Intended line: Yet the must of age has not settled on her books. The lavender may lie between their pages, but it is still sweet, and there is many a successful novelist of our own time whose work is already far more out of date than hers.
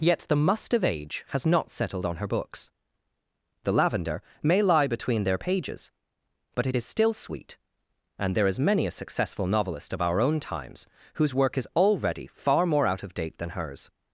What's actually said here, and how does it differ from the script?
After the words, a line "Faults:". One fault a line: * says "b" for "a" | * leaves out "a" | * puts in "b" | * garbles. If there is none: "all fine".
Yet the must of age has not settled on her books. The lavender may lie between their pages, but it is still sweet, and there is many a successful novelist of our own times whose work is already far more out of date than hers.
Faults:
* says "times" for "time"